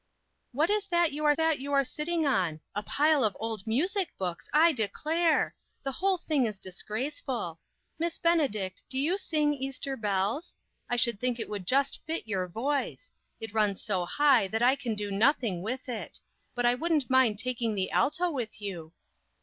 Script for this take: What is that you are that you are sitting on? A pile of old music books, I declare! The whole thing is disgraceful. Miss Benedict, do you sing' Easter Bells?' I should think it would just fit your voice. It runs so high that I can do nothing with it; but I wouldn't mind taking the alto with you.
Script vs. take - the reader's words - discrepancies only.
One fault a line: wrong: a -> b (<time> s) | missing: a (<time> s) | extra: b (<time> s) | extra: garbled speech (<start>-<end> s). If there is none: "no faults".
no faults